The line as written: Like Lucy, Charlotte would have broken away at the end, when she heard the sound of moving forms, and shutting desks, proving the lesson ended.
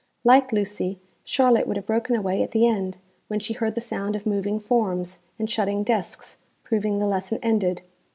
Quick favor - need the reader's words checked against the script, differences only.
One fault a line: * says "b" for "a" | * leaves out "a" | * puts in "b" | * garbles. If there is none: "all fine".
all fine